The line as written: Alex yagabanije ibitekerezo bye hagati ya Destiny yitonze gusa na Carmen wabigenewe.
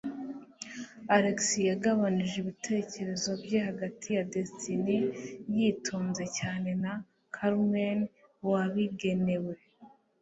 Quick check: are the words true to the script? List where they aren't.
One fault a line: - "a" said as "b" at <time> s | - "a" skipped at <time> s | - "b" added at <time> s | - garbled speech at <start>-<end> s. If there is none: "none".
- "gusa" said as "cyane" at 6.4 s